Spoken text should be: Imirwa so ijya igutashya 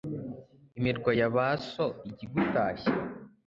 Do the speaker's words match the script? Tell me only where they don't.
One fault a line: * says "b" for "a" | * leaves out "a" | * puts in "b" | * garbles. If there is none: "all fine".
* puts in "ya ba"